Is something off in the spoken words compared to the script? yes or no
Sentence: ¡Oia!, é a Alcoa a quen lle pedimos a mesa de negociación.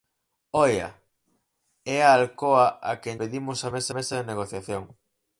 yes